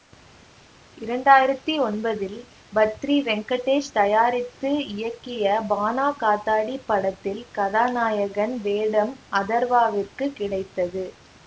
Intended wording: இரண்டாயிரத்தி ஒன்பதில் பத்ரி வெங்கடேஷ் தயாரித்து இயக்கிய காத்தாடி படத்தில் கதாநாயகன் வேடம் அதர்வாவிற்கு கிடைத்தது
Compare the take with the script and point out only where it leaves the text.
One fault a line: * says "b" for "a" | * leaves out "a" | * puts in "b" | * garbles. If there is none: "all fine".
* puts in "பாணா"